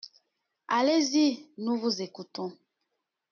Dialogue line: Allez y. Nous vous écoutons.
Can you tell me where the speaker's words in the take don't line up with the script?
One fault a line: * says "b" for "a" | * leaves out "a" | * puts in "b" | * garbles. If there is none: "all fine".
all fine